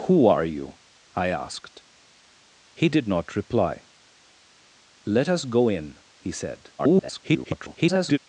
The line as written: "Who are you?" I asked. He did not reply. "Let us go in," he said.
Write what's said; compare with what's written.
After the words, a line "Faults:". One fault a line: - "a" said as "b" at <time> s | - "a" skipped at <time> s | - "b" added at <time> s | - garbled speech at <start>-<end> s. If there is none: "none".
"Who are you?" I asked. He did not reply. "Let us go in," he said. [garbled]
Faults:
- garbled speech at 6.8-8.2 s